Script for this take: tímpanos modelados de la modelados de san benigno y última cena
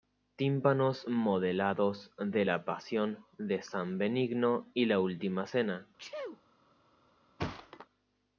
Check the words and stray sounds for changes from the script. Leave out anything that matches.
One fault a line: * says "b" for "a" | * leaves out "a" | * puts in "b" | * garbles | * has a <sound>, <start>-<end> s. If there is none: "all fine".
* says "pasión" for "modelados"
* puts in "la"
* has a sneeze, 6.0-6.4 s
* has a thud, 7.4-7.9 s